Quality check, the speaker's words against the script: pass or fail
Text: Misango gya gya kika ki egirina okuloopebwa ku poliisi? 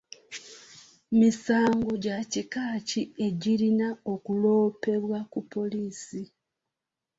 fail